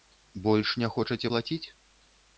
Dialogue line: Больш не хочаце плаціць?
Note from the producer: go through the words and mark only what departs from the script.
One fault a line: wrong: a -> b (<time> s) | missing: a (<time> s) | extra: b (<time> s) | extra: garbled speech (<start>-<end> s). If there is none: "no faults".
no faults